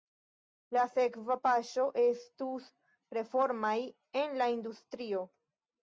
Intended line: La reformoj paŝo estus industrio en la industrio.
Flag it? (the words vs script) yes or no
yes